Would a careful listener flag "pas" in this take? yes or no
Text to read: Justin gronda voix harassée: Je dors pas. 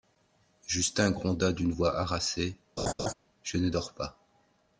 no